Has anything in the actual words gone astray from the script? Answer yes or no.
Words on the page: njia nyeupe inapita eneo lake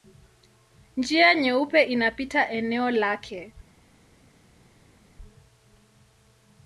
no